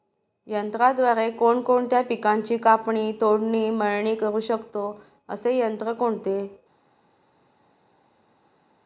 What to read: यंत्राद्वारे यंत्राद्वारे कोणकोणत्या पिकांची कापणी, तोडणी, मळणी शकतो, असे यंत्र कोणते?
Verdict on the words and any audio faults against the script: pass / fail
fail